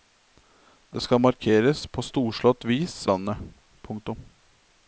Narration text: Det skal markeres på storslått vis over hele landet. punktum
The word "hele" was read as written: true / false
false